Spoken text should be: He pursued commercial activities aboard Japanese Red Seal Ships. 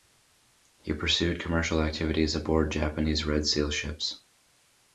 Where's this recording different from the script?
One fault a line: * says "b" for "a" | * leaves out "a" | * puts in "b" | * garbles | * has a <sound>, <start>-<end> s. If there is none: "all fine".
all fine